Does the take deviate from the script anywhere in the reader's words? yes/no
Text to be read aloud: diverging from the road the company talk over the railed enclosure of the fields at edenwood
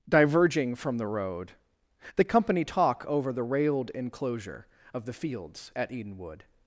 no